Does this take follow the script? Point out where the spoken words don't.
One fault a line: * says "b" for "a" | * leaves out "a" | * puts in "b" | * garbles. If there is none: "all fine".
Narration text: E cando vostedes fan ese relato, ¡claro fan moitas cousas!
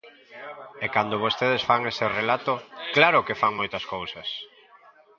* puts in "que"